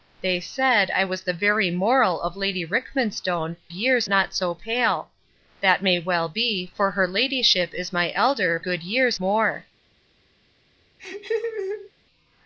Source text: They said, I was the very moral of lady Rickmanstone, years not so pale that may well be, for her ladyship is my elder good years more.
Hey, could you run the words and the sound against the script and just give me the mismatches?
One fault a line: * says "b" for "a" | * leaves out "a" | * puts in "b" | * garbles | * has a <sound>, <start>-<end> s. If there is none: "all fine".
* has a laugh, 11.0-11.9 s